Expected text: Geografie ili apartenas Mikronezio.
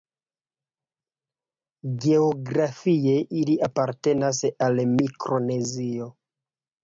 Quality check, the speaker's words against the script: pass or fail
fail